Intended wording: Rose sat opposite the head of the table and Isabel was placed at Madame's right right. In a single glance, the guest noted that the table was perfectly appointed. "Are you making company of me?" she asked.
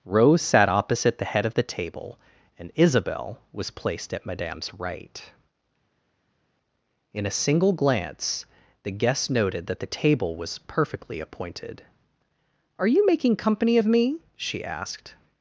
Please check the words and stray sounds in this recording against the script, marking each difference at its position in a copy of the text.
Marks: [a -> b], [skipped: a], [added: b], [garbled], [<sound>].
Rose sat opposite the head of the table and Isabel was placed at Madame's right [skipped: right.] In a single glance, the guest noted that the table was perfectly appointed. "Are you making company of me?" she asked.